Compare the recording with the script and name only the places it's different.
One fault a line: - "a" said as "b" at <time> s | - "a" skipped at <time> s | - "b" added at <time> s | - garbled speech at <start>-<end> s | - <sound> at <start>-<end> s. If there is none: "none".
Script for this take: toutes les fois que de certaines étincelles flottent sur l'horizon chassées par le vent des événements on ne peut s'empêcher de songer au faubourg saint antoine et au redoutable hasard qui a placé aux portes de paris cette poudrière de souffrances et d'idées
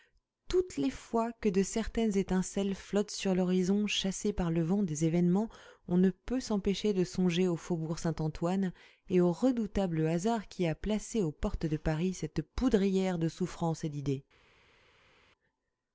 none